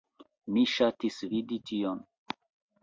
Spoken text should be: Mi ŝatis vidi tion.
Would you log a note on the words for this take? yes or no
no